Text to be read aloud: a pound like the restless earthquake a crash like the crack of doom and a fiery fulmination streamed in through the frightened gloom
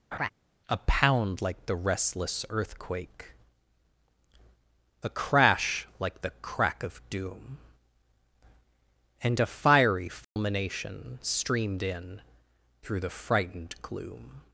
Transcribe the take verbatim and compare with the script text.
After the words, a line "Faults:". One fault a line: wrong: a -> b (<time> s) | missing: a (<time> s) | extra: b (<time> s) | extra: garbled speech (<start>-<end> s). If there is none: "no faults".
a pound like the restless earthquake a crash like the crack of doom and a fiery fulmination streamed in through the frightened gloom
Faults:
no faults